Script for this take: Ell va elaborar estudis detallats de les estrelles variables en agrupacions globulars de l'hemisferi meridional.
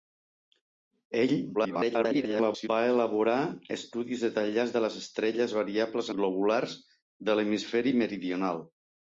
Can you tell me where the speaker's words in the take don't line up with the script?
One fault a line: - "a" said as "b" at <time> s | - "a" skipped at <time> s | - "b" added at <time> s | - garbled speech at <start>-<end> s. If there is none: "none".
- garbled speech at 1.5-2.7 s
- "en agrupacions" skipped at 6.1 s